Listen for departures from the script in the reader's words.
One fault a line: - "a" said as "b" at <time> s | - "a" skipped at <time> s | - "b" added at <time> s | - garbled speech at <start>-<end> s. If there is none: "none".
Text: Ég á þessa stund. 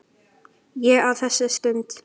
none